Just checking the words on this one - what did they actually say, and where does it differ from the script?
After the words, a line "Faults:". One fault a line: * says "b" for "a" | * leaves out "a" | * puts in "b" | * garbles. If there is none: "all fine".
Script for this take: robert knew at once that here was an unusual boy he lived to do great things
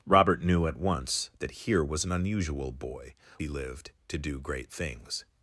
robert knew at once that here was an unusual boy he lived to do great things
Faults:
all fine